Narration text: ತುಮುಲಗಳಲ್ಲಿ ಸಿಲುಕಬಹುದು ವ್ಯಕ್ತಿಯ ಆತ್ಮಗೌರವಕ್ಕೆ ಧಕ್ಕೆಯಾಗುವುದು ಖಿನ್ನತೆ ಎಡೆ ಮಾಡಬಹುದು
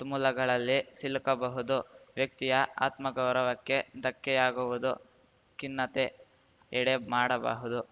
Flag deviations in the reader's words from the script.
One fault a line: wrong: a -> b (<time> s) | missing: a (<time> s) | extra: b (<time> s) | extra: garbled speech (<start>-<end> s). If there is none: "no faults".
no faults